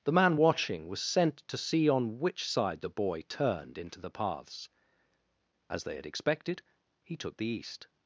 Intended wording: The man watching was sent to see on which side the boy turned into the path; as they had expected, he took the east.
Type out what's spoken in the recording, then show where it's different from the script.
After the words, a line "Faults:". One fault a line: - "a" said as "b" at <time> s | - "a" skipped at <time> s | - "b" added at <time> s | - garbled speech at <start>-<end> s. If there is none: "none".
The man watching was sent to see on which side the boy turned into the paths; as they had expected, he took the east.
Faults:
- "path" said as "paths" at 4.1 s